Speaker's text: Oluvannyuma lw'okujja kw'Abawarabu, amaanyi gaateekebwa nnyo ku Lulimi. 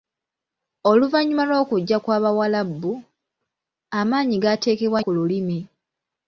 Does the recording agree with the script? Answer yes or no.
no